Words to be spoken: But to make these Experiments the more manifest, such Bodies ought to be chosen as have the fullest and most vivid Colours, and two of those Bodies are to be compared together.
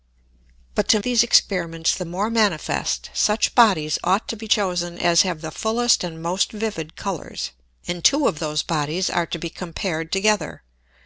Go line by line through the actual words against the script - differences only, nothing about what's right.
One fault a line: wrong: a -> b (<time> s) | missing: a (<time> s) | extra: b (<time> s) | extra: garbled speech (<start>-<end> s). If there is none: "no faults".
missing: make (1.0 s)